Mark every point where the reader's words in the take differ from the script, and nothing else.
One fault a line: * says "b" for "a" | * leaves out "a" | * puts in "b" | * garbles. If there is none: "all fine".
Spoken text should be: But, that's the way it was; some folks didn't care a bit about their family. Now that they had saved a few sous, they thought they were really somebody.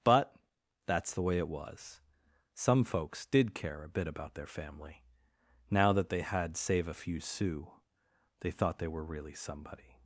* says "did" for "didn't"
* says "save" for "saved"